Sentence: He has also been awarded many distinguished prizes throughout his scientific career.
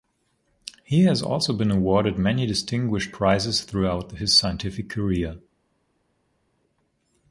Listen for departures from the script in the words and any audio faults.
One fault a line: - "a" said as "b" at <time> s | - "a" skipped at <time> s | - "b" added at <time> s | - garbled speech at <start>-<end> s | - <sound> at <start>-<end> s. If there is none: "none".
none